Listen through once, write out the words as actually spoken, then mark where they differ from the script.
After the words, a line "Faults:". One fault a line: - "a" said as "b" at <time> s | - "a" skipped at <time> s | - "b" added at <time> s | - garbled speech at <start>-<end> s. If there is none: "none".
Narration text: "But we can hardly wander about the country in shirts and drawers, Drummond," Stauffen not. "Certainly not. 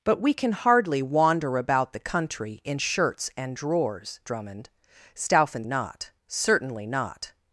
"But we can hardly wander about the country in shirts and drawers, Drummond," Stauffen not. "Certainly not.
Faults:
none